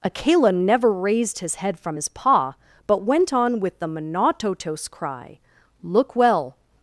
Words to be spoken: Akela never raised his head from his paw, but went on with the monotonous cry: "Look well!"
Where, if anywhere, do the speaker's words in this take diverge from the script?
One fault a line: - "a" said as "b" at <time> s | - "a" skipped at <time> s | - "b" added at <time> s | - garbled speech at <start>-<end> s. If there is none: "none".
none